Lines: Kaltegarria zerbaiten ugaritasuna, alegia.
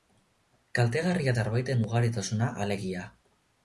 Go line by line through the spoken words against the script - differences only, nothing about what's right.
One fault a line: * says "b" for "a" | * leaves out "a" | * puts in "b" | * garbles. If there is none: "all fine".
all fine